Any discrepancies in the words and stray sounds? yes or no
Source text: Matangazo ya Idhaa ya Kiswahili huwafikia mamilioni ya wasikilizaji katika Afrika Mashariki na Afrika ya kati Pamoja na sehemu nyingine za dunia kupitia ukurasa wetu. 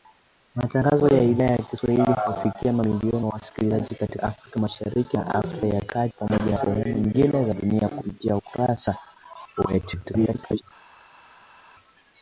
yes